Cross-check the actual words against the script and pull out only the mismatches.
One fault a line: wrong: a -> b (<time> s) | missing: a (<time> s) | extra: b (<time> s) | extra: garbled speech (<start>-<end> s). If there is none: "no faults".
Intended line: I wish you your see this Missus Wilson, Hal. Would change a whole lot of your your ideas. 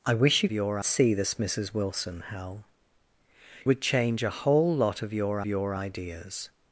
no faults